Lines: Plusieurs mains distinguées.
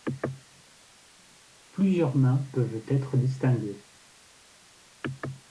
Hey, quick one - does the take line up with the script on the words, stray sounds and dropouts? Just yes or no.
no